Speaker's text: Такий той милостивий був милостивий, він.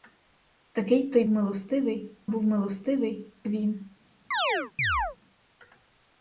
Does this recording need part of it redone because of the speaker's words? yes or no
no